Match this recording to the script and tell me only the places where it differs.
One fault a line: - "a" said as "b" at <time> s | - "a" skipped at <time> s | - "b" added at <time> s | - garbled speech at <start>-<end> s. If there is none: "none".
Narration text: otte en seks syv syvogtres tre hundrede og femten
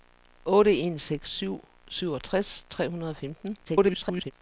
- garbled speech at 3.6-4.3 s